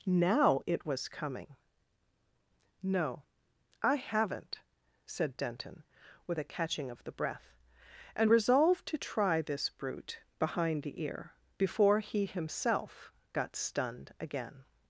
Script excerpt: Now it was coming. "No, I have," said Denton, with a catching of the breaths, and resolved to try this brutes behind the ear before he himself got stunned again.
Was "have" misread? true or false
true